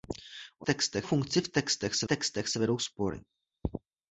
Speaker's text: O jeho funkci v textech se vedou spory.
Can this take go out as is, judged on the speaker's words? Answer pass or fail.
fail